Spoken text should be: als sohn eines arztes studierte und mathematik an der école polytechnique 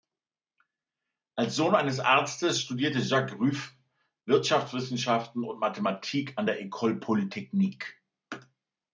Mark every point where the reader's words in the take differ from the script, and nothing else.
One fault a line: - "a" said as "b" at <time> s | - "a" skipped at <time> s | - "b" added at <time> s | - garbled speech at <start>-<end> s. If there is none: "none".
- "jacques rueff wirtschaftswissenschaften" added at 3.0 s